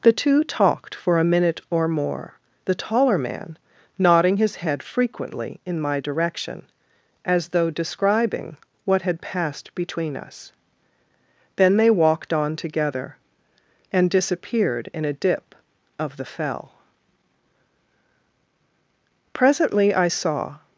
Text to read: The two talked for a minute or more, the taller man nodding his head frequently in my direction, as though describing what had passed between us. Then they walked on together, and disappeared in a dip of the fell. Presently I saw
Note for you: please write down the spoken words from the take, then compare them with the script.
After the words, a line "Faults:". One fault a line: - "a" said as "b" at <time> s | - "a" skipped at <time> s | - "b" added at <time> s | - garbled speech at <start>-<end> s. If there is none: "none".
The two talked for a minute or more, the taller man nodding his head frequently in my direction, as though describing what had passed between us. Then they walked on together, and disappeared in a dip of the fell. Presently I saw
Faults:
none